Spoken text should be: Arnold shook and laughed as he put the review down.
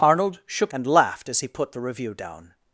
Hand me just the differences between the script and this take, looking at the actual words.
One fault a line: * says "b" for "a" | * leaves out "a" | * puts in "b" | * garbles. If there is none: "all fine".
all fine